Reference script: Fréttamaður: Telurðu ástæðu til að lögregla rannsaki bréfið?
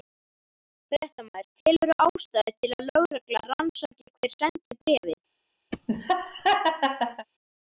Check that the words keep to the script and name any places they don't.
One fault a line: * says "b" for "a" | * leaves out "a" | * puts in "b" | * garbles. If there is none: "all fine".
* puts in "hver sendi"